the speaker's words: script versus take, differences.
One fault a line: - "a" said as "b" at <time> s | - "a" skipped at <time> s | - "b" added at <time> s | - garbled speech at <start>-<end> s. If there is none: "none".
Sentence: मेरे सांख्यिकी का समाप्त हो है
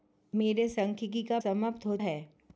none